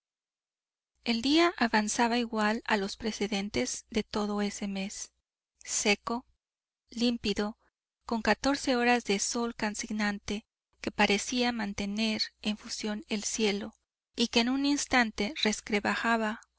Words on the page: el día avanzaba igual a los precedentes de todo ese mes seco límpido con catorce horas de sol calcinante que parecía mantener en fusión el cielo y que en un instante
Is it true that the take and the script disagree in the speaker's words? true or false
false